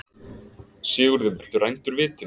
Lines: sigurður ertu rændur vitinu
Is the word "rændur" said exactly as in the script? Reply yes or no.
yes